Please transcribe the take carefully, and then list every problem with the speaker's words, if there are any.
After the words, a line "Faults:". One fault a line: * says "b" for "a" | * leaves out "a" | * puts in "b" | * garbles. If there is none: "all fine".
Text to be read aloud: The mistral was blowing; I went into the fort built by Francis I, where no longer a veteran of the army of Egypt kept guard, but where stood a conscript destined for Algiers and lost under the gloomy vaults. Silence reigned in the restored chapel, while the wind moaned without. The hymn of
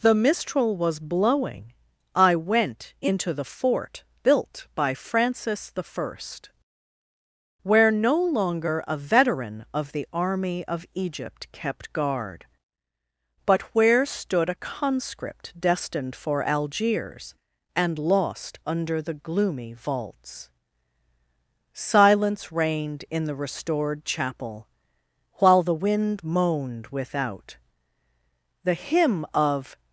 The mistral was blowing; I went into the fort built by Francis I, where no longer a veteran of the army of Egypt kept guard, but where stood a conscript destined for Algiers and lost under the gloomy vaults. Silence reigned in the restored chapel, while the wind moaned without. The hymn of
Faults:
all fine